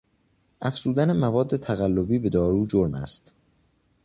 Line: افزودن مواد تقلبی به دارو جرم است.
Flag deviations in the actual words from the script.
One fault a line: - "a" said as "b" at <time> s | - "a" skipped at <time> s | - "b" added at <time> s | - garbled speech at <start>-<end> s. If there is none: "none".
none